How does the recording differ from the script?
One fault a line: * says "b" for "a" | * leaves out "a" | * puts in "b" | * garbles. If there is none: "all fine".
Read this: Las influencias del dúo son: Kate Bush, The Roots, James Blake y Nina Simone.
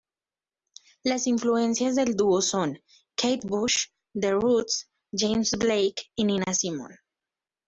all fine